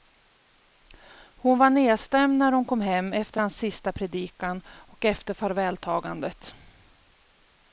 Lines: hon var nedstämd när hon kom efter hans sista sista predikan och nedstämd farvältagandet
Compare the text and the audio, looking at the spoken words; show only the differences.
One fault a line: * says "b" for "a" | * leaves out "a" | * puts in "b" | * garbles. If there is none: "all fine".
* puts in "hem"
* leaves out "sista"
* says "efter" for "nedstämd"